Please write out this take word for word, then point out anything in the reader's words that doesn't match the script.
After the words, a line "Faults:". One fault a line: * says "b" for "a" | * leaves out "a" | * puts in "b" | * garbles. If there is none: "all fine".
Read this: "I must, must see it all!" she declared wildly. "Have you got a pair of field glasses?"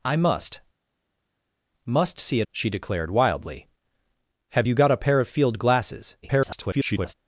"I must, must see it!" she declared wildly. "Have you got a pair of field glasses?" [garbled]
Faults:
* leaves out "all"
* garbles